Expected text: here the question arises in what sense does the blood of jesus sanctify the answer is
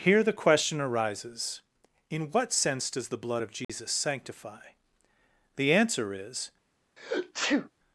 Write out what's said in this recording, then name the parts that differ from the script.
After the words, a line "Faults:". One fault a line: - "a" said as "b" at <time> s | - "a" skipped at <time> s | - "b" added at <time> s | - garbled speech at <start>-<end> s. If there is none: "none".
here the question arises in what sense does the blood of jesus sanctify the answer is
Faults:
none